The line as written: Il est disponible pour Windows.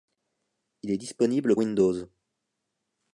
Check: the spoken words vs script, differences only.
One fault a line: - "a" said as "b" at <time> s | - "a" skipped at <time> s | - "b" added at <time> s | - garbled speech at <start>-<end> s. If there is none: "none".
- "pour" skipped at 1.6 s